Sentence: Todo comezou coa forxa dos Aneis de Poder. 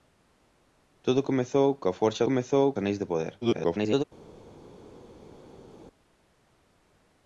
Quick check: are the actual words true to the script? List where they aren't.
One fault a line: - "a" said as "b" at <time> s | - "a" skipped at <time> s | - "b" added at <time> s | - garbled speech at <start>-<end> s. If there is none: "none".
- "dos" said as "comezou" at 2.3 s
- garbled speech at 3.4-4.0 s